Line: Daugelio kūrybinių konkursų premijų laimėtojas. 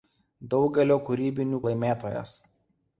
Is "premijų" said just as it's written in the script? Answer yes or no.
no